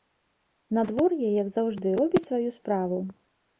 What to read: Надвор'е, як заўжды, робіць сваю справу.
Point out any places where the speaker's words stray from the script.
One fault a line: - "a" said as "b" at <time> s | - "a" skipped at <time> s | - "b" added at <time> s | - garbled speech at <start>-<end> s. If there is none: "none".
none